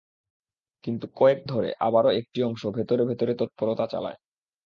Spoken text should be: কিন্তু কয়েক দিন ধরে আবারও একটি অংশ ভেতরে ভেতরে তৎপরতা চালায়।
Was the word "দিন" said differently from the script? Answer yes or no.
yes